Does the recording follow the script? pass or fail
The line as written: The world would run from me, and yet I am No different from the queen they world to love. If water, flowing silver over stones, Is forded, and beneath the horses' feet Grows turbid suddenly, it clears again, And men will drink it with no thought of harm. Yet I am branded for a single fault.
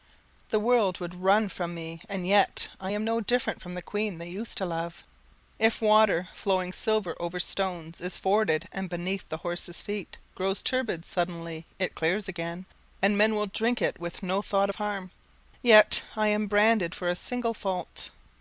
fail